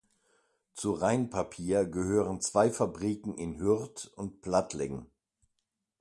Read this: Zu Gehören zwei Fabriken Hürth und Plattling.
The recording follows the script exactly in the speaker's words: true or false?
false